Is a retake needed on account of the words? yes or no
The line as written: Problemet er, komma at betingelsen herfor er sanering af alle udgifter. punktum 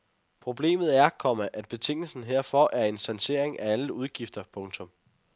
yes